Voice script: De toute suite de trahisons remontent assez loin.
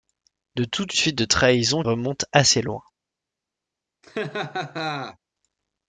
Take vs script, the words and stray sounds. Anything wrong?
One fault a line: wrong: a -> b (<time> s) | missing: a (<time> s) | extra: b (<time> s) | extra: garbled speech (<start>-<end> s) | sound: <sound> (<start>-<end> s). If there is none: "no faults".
sound: laugh (4.0-5.2 s)